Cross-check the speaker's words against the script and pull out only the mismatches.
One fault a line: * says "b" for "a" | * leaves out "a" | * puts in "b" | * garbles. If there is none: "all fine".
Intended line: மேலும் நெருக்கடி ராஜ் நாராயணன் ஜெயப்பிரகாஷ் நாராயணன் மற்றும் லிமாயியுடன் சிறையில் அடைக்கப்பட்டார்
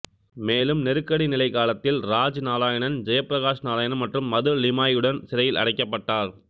* puts in "நிலை காலத்தில்"
* puts in "மது"